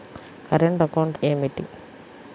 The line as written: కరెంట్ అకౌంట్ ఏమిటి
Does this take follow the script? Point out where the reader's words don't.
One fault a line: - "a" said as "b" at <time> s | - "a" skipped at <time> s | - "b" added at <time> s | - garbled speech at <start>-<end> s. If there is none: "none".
none